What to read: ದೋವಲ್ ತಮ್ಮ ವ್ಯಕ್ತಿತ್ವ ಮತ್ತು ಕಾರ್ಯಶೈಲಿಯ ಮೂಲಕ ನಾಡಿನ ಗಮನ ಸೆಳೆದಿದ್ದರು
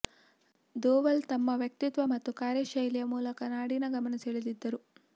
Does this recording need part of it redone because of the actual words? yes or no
no